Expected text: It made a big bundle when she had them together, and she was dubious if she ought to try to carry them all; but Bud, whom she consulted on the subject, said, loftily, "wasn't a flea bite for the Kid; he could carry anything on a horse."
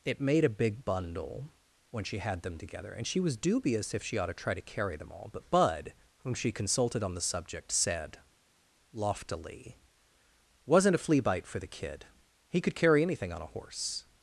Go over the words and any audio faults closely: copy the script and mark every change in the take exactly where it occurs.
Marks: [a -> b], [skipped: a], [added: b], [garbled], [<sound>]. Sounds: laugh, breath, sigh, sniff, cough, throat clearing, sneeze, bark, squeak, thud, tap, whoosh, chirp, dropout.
It made a big bundle when she had them together, and she was dubious if she ought to try to carry them all; but Bud, whom she consulted on the subject, said, loftily, "wasn't a flea bite for the Kid; he could carry anything on a horse."